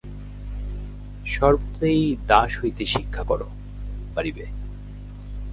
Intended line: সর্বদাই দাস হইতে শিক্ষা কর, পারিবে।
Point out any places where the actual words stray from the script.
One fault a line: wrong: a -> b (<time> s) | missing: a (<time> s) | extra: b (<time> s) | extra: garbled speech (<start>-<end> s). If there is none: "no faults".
no faults